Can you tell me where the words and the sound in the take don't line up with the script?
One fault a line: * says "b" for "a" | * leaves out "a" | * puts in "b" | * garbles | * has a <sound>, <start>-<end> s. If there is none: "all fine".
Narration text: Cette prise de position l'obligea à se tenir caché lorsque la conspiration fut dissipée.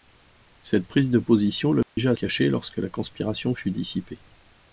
* has a dropout, 1.8-2.0 s
* leaves out "se tenir"